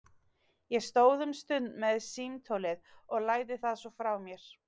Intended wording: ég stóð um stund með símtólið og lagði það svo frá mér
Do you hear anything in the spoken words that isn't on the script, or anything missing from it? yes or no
no